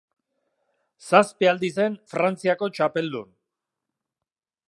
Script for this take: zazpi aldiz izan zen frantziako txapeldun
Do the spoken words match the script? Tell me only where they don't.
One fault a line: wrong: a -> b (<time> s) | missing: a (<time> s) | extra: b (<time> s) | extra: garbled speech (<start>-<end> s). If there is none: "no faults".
missing: izan (1.7 s)